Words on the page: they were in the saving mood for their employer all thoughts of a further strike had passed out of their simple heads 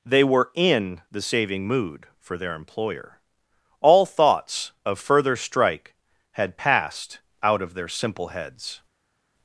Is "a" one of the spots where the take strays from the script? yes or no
yes